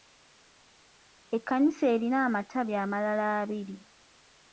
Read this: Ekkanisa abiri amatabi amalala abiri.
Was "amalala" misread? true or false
false